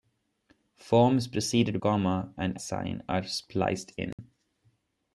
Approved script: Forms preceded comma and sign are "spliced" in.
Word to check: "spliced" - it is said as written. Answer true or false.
true